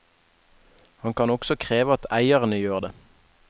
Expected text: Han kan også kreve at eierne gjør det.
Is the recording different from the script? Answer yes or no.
no